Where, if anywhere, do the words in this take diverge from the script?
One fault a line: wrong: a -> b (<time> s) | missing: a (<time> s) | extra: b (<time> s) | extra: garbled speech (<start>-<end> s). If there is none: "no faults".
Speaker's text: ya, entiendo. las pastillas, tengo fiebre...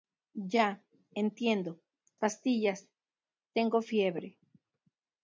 missing: las (1.8 s)